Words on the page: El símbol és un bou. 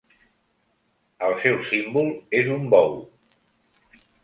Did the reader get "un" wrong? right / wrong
right